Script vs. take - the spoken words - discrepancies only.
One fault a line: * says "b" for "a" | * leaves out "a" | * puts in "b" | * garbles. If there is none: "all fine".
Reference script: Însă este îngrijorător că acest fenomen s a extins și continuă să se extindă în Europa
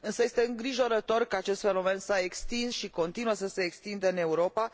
all fine